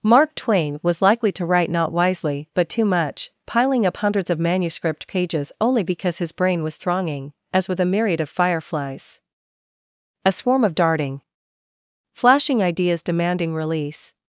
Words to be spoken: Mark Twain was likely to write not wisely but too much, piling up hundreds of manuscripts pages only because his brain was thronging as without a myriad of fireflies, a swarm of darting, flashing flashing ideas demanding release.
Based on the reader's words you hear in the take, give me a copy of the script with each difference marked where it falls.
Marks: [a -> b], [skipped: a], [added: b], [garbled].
Mark Twain was likely to write not wisely but too much, piling up hundreds of [manuscripts -> manuscript] pages only because his brain was thronging as [without -> with] a myriad of fireflies, a swarm of darting, flashing [skipped: flashing] ideas demanding release.